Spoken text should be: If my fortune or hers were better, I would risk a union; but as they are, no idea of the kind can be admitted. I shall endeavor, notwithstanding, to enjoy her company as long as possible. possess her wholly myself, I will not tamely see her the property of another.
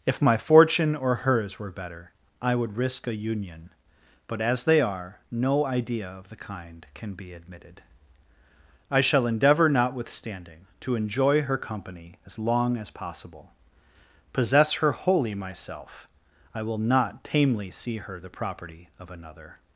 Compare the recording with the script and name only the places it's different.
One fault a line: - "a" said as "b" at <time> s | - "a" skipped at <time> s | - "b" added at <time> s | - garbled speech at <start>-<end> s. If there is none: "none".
none